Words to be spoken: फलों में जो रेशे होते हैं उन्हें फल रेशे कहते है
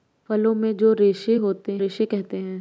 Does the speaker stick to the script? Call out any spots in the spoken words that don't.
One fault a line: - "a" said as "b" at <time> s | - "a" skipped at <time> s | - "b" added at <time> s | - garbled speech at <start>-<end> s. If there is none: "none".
- "हैं उन्हें फल" skipped at 1.8 s